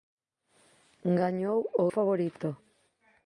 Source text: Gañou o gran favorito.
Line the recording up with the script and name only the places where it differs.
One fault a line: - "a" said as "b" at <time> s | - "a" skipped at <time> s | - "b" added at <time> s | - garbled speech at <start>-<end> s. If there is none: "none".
- "gran" skipped at 1.9 s